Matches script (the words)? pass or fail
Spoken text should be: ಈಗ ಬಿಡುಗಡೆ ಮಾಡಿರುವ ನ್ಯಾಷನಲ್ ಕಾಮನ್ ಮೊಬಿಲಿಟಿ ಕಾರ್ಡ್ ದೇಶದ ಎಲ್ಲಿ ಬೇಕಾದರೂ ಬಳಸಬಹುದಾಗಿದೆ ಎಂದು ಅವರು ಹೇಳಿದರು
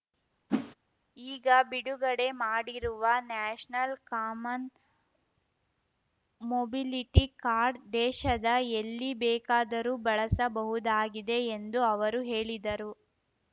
pass